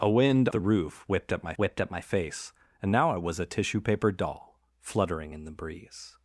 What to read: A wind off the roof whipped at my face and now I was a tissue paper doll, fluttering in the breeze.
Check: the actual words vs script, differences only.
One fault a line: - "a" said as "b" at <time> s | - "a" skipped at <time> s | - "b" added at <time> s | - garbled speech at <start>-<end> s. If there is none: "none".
- "off" skipped at 0.5 s
- "whipped at my" added at 1.6 s